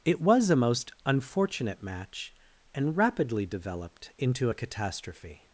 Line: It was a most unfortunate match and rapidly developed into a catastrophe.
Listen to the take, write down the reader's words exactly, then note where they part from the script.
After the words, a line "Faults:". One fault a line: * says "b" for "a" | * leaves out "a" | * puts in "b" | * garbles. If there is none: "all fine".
It was a most unfortunate match and rapidly developed into a catastrophe.
Faults:
all fine